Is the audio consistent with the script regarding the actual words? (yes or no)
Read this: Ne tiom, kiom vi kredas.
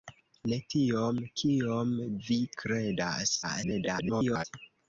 no